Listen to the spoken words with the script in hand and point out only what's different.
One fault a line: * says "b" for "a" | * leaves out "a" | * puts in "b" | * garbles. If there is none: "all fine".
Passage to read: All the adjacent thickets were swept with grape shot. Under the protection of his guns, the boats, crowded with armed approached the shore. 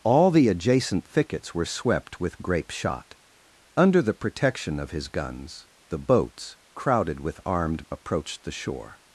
all fine